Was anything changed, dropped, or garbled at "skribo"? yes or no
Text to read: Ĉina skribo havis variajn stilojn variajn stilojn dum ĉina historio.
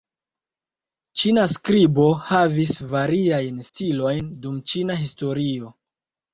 no